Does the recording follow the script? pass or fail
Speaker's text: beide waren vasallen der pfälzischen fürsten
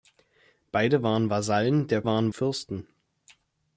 fail